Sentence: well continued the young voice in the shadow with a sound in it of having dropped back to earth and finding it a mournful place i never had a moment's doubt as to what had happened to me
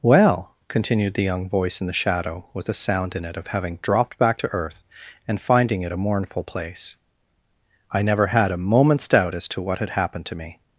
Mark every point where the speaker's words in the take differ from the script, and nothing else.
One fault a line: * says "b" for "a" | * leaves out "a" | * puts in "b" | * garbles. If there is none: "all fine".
all fine